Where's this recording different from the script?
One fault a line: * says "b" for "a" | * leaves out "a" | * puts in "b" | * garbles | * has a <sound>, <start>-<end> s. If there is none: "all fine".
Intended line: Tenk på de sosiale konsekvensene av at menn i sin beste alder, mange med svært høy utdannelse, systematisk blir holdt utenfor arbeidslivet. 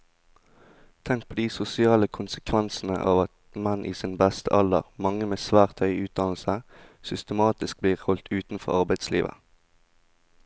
all fine